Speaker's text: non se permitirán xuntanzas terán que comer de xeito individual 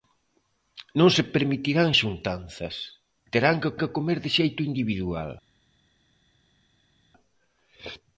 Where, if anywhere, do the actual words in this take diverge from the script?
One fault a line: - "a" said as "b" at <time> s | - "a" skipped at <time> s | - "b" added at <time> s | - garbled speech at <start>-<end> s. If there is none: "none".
- "que" added at 3.8 s